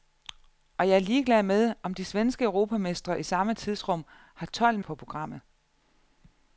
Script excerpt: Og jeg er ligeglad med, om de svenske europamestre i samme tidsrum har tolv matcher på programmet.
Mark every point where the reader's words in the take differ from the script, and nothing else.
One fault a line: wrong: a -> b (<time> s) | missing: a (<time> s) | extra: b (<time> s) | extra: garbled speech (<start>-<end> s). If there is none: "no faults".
missing: matcher (4.8 s)